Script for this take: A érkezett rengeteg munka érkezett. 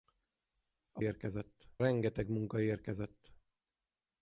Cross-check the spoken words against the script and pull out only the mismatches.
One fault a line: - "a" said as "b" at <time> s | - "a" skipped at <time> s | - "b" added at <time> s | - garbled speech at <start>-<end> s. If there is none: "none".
none